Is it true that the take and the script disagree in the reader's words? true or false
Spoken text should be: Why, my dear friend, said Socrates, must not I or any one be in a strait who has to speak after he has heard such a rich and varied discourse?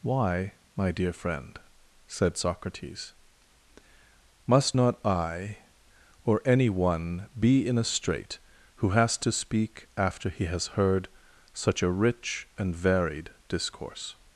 false